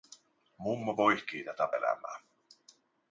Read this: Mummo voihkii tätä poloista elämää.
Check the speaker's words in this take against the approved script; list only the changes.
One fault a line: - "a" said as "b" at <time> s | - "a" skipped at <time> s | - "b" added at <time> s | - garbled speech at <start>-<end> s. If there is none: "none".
- "poloista" skipped at 1.7 s